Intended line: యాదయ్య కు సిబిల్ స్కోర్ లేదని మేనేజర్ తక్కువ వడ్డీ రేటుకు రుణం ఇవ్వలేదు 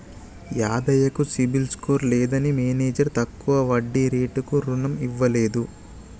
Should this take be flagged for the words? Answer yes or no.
no